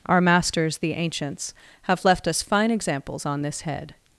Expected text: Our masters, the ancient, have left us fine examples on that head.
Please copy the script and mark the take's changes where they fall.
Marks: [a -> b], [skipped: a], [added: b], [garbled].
Our masters, the [ancient, -> ancients] have left us fine examples on [that -> this] head.